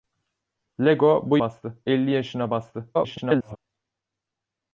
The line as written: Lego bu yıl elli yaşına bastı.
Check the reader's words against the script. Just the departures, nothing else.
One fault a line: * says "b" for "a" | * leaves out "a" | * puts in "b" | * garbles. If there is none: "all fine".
* says "bastı" for "yıl"
* garbles